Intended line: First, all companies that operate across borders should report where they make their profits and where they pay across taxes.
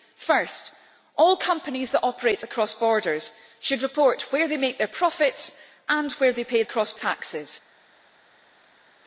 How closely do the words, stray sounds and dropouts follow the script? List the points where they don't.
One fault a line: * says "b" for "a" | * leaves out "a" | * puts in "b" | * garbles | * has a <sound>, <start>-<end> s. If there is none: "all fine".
all fine